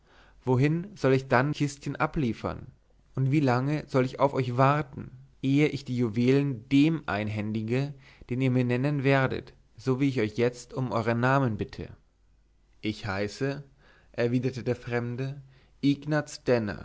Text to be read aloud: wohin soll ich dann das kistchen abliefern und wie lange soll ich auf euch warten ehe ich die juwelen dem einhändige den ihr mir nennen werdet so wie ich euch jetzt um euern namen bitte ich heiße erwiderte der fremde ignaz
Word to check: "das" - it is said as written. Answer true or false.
false